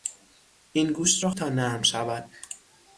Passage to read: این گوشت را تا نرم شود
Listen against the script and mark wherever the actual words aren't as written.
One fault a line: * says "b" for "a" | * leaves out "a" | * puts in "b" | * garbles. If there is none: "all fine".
all fine